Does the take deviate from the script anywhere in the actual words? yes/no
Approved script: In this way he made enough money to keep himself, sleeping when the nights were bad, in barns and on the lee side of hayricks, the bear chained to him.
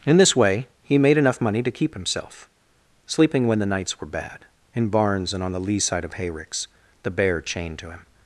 no